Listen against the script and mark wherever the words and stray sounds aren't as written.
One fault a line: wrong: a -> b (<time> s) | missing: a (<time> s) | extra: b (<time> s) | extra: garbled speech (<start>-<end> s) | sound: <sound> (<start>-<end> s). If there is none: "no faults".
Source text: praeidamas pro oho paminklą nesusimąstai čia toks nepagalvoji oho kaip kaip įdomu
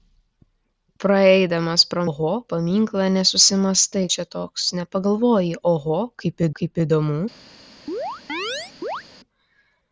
sound: chirp (7.9-9.0 s)